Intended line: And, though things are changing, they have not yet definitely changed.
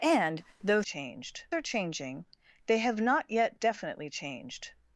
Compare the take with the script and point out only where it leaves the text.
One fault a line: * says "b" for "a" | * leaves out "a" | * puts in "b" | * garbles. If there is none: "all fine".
* says "changed" for "things"